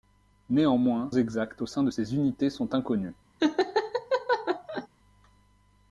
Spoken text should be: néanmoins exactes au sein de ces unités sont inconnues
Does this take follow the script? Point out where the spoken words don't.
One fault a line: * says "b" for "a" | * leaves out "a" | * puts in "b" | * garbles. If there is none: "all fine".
all fine